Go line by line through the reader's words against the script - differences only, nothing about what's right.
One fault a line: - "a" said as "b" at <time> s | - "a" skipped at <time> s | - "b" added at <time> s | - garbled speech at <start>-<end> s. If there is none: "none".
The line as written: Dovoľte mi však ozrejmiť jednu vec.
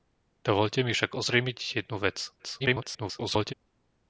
- garbled speech at 2.4-3.5 s